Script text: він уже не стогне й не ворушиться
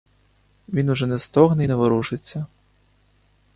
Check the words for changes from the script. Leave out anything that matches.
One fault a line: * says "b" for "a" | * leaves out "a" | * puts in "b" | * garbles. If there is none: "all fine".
all fine